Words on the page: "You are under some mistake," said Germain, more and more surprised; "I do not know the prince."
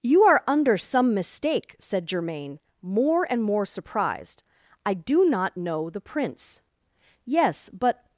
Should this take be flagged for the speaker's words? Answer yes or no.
yes